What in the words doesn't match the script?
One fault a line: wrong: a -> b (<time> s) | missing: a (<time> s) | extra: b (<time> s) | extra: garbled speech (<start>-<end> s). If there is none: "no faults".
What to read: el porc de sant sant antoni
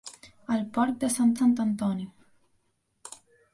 no faults